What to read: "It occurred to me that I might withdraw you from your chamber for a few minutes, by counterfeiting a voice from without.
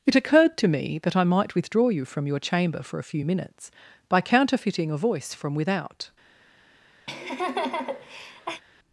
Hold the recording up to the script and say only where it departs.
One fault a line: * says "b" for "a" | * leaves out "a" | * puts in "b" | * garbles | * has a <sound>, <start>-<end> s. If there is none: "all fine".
* has a laugh, 7.1-8.6 s